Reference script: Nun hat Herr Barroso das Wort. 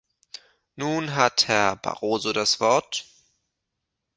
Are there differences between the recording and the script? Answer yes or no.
no